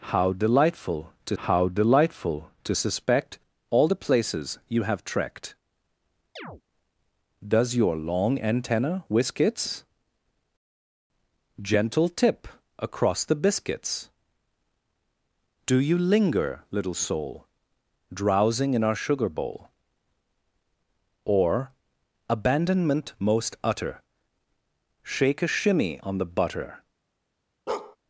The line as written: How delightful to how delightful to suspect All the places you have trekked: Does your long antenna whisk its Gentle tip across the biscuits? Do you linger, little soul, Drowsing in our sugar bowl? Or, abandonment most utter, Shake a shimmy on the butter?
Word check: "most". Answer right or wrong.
right